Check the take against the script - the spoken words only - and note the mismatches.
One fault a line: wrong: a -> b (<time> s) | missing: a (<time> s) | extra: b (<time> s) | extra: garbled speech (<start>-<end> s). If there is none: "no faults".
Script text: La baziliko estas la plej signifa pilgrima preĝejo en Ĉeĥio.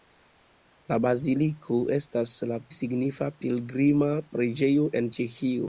missing: plej (2.6 s)